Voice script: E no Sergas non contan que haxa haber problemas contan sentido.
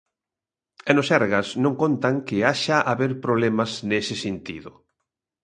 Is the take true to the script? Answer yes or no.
no